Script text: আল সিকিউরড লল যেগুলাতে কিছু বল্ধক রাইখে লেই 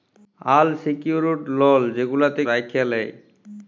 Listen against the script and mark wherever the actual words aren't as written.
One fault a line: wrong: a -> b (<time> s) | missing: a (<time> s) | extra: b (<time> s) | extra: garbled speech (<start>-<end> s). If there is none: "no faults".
missing: কিছু বল্ধক (2.4 s)